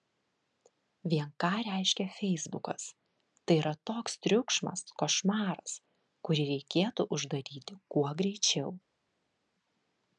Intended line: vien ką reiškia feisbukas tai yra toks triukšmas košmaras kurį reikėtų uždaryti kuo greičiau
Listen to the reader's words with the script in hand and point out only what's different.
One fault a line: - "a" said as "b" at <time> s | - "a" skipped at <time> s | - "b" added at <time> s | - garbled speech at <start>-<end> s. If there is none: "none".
none